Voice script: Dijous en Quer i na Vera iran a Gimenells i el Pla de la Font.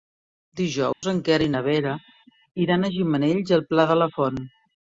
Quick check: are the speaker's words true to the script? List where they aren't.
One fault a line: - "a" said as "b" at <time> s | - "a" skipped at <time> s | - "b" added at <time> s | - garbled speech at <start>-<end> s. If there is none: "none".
none